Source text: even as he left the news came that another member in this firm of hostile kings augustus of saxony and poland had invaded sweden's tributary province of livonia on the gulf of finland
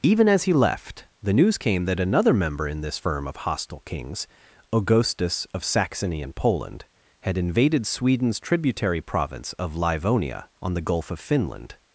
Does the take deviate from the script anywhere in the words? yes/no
no